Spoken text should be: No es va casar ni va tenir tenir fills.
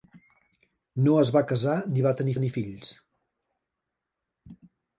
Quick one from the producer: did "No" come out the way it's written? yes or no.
yes